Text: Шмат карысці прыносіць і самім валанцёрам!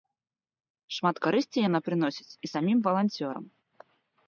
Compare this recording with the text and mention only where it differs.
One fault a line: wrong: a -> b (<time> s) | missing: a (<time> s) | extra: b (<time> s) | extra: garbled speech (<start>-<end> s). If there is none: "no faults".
extra: яна (1.7 s)